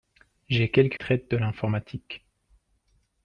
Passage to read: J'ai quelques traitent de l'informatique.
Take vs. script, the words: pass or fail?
pass